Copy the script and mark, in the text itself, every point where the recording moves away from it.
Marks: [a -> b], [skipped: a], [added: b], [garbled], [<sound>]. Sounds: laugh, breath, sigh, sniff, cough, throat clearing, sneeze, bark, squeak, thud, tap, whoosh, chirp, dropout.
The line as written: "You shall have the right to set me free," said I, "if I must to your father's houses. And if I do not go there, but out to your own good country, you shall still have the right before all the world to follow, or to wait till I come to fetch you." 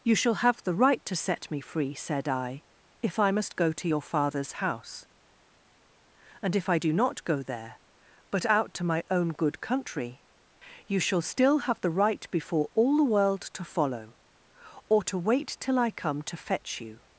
"You shall have the right to set me free," said I, "if I must [added: go] to your father's [houses. -> house] And if I do not go there, but out to [your -> my] own good country, you shall still have the right before all the world to follow, or to wait till I come to fetch you."